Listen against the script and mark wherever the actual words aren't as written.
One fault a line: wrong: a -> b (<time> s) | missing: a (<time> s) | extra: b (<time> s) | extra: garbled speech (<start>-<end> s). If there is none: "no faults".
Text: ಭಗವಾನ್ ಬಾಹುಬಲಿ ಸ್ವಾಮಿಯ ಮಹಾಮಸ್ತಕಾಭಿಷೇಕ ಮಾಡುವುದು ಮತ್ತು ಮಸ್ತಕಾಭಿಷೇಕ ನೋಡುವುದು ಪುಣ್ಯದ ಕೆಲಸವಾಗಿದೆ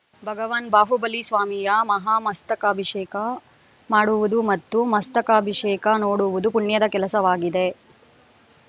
no faults